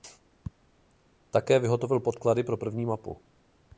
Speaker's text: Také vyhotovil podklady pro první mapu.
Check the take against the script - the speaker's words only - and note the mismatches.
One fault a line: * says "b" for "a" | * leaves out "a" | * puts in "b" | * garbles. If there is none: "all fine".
all fine